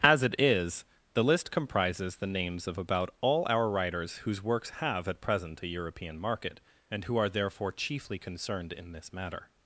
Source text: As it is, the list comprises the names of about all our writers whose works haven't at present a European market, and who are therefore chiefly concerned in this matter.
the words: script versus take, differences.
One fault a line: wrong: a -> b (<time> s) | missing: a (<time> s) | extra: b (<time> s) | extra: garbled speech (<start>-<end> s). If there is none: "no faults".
wrong: haven't -> have (4.8 s)